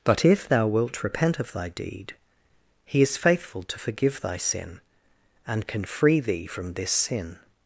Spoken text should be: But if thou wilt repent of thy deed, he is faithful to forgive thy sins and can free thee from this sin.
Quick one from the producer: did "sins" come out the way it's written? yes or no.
no